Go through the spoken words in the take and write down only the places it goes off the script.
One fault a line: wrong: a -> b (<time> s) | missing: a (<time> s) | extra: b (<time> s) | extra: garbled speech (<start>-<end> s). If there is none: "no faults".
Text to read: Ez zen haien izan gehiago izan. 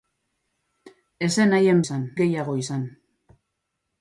no faults